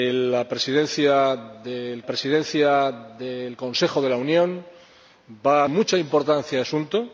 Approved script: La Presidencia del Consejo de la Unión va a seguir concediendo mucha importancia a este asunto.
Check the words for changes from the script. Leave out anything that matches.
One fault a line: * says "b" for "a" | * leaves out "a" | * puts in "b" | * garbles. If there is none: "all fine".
* puts in "Presidencia del"
* leaves out "seguir concediendo"
* leaves out "este"